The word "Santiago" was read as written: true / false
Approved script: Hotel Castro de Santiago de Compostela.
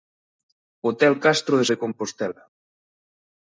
false